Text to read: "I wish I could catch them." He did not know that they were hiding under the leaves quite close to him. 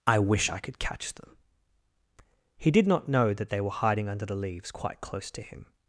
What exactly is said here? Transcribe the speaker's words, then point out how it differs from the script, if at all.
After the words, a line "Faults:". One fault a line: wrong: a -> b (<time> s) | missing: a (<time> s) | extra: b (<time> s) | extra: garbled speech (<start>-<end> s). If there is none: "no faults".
"I wish I could catch them." He did not know that they were hiding under the leaves quite close to him.
Faults:
no faults